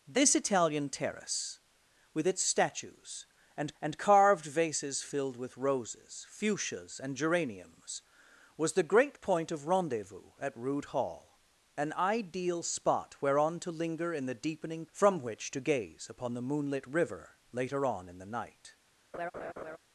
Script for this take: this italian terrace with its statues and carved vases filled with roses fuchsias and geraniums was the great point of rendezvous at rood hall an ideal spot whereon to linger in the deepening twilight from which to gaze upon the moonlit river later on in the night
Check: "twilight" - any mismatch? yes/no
yes